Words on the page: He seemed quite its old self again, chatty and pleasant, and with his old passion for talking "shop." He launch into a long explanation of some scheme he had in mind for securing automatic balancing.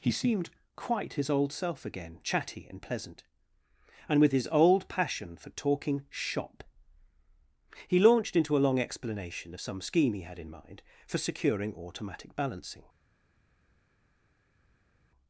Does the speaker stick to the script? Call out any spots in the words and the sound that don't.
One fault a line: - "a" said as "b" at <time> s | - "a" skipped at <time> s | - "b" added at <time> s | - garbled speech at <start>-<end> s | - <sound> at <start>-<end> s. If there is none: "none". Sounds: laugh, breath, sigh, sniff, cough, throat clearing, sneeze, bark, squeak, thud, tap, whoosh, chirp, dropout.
- "its" said as "his" at 1.1 s
- "launch" said as "launched" at 8.0 s